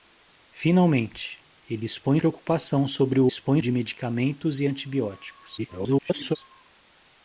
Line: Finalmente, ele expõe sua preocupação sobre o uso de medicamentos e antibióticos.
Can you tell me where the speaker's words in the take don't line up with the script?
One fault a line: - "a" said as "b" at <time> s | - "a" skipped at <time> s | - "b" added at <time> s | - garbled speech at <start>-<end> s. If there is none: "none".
- "sua" skipped at 2.2 s
- "uso" said as "expõe" at 3.3 s
- garbled speech at 5.6-6.4 s